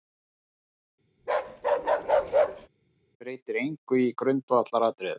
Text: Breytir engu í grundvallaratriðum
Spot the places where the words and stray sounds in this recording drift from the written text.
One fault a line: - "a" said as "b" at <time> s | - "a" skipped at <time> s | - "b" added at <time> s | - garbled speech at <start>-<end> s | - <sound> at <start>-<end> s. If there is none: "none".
- bark at 1.2-2.7 s